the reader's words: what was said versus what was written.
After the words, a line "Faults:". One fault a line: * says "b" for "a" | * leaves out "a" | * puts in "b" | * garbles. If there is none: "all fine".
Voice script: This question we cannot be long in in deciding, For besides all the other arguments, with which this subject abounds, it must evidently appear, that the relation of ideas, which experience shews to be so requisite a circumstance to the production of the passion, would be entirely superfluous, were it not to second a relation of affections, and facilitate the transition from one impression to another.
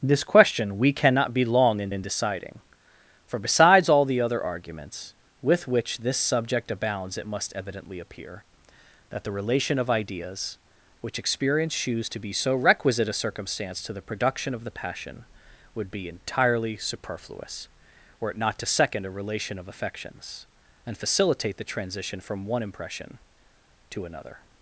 This question we cannot be long in in deciding, For besides all the other arguments, with which this subject abounds, it must evidently appear, that the relation of ideas, which experience shews to be so requisite a circumstance to the production of the passion, would be entirely superfluous, were it not to second a relation of affections, and facilitate the transition from one impression to another.
Faults:
all fine